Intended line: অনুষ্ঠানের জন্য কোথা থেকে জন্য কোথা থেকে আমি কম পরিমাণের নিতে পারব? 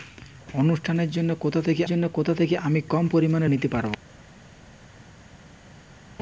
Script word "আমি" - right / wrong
right